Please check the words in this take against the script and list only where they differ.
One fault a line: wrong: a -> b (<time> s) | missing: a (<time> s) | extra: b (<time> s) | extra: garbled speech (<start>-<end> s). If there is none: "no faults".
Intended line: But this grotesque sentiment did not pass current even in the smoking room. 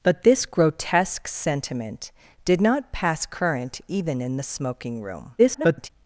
extra: garbled speech (5.4-5.9 s)